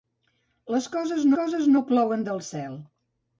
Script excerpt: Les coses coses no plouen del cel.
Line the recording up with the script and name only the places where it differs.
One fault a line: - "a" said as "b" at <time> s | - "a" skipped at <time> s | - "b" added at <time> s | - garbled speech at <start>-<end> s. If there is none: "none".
none